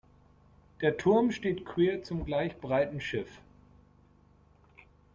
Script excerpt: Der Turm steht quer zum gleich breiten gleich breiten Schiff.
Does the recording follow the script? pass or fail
fail